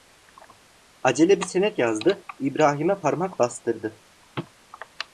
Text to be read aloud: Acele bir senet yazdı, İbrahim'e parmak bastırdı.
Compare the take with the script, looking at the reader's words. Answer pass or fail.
pass